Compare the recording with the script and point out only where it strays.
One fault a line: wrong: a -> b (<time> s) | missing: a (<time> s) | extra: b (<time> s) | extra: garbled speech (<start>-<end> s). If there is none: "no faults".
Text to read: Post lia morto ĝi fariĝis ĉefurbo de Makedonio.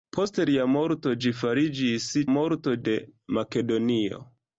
wrong: ĉefurbo -> morto (2.4 s)